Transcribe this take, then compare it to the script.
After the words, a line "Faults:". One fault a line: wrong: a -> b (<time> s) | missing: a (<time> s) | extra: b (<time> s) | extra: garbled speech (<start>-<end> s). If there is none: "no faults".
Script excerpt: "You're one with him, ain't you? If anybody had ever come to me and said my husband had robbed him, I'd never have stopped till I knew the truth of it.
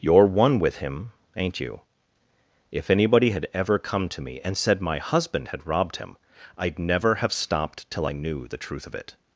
"You're one with him, ain't you? If anybody had ever come to me and said my husband had robbed him, I'd never have stopped till I knew the truth of it.
Faults:
no faults